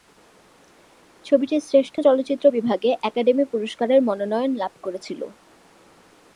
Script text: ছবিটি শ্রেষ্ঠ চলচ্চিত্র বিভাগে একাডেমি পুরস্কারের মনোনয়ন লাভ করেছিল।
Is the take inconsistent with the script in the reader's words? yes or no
no